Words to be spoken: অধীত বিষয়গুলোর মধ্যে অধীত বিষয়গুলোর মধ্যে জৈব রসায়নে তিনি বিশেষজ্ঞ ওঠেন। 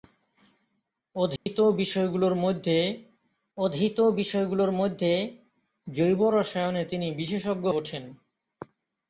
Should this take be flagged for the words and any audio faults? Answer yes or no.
yes